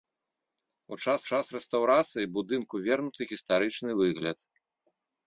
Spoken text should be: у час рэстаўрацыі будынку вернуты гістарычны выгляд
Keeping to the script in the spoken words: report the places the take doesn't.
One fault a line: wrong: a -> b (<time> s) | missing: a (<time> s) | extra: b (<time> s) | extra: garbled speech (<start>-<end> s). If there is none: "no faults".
extra: час (1.3 s)